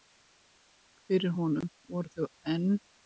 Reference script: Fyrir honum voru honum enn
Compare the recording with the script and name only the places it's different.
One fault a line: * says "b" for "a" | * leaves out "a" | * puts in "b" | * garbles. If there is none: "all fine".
* says "þau" for "honum"